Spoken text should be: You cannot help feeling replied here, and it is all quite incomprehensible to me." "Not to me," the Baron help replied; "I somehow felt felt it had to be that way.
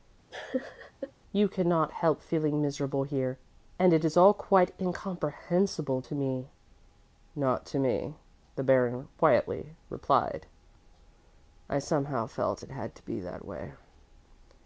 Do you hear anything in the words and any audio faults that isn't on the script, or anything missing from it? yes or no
yes